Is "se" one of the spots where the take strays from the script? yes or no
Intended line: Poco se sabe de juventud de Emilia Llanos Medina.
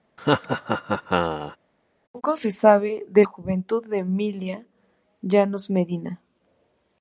no